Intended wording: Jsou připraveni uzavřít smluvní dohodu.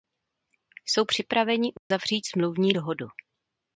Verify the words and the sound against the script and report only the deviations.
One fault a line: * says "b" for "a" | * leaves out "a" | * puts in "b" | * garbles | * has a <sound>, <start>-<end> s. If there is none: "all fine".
* has a dropout, 1.8-1.9 s